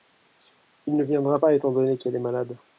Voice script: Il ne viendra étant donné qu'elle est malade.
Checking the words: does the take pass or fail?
fail